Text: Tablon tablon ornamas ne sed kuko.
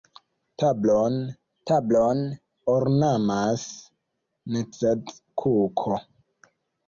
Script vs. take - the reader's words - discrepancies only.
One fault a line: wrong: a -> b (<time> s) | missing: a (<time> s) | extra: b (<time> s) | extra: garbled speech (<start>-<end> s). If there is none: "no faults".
no faults